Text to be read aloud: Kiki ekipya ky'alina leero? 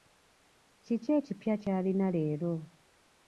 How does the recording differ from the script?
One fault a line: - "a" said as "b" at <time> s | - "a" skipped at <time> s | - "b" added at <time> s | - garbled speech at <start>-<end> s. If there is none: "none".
none